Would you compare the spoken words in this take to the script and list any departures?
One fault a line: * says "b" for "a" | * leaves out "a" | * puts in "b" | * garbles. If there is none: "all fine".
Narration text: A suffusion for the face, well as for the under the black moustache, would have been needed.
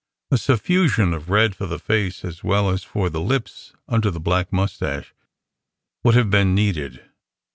* puts in "of red"
* puts in "as"
* puts in "lips"